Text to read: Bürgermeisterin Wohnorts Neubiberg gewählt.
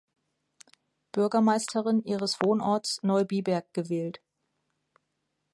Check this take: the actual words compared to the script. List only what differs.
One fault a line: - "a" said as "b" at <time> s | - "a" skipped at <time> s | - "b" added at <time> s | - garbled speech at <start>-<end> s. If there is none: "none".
- "ihres" added at 2.0 s